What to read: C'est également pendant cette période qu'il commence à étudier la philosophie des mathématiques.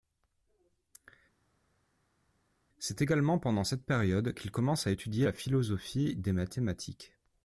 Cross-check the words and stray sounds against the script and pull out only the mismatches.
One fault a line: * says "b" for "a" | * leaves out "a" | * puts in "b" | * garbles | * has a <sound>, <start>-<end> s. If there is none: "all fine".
all fine